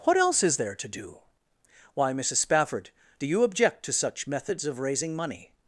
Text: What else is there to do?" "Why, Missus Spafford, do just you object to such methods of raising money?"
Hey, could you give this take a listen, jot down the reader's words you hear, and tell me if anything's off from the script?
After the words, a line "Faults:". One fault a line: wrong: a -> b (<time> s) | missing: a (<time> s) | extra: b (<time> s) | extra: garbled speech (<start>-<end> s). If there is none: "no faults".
What else is there to do?" "Why, Missus Spafford, do you object to such methods of raising money?"
Faults:
missing: just (3.3 s)